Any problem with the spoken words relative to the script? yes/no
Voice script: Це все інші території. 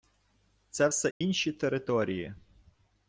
no